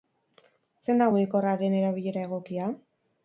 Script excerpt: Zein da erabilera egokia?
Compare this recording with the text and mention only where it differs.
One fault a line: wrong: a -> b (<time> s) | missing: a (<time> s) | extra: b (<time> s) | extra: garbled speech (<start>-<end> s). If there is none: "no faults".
extra: mugikorraren (1.1 s)